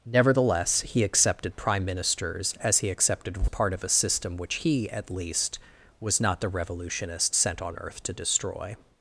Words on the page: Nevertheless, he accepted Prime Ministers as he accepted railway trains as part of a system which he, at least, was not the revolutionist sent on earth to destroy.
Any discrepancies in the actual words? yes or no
yes